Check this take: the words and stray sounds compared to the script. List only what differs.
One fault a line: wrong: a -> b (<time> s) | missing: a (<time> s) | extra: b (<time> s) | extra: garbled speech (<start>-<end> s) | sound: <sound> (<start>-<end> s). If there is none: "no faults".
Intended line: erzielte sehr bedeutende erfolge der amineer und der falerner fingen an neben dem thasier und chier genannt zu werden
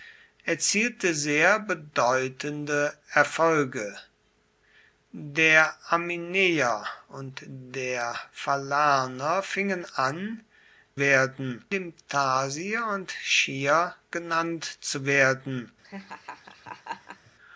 wrong: neben -> werden (11.0 s)
sound: laugh (15.8-17.3 s)